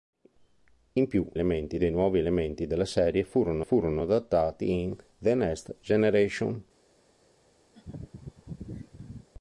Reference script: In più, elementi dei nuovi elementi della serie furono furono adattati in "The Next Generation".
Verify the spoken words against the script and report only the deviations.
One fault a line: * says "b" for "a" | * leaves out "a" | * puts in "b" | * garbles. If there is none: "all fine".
all fine